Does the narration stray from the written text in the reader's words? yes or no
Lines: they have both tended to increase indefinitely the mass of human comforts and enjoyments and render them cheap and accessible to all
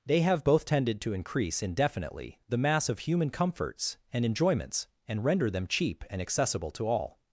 no